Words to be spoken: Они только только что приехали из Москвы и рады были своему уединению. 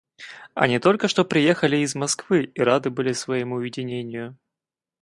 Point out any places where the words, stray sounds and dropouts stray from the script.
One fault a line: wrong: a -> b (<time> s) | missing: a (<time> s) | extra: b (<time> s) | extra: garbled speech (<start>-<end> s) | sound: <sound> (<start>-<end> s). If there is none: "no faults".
missing: только (1.1 s)